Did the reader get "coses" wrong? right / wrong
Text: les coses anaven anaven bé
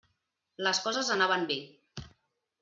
right